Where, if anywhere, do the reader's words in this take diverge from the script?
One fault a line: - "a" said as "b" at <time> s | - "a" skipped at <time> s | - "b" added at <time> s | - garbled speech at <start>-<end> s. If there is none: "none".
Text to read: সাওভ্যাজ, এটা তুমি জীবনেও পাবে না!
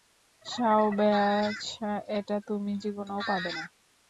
none